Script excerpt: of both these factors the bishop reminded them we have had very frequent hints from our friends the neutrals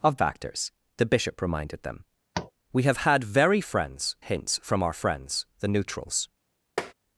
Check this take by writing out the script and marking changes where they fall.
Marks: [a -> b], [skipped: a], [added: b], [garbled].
of [skipped: both these] factors the bishop reminded them we have had very [frequent -> friends] hints from our friends the neutrals